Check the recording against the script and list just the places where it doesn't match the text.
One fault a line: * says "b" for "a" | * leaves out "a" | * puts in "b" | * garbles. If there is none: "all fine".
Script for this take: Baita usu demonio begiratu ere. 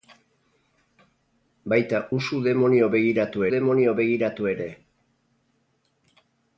* puts in "demonio begiratu"